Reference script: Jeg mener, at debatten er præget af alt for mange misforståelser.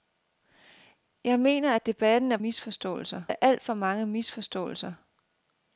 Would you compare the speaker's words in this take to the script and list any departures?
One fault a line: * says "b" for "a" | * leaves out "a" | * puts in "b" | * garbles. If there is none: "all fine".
* says "misforståelser" for "præget"